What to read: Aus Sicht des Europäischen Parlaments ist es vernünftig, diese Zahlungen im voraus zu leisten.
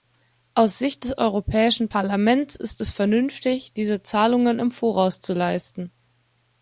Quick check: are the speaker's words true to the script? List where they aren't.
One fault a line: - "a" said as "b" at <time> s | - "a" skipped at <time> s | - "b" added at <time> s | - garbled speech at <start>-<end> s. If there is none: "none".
none